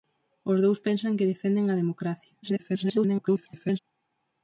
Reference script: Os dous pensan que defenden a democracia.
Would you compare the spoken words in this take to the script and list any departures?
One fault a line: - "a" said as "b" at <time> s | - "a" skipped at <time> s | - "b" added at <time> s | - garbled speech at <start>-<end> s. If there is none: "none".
- garbled speech at 2.4-3.8 s